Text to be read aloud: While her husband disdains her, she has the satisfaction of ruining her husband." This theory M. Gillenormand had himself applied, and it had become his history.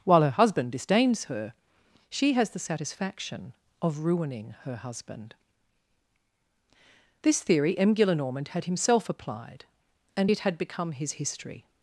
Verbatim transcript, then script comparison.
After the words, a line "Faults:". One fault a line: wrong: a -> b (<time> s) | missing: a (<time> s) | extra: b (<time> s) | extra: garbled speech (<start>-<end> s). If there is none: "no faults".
While her husband disdains her, she has the satisfaction of ruining her husband." This theory M. Gillenormand had himself applied, and it had become his history.
Faults:
no faults